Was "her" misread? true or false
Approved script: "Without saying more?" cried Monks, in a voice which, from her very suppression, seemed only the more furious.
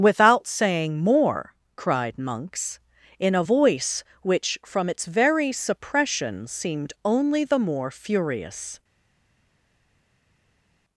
true